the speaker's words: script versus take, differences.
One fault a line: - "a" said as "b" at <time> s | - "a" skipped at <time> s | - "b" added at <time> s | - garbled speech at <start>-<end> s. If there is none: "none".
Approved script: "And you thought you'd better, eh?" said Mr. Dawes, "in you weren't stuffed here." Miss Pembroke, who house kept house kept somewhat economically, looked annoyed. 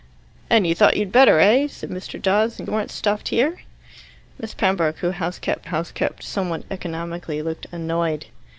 none